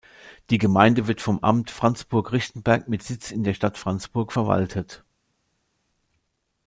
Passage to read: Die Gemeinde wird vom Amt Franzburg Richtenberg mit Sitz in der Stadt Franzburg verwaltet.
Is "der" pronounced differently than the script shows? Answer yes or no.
no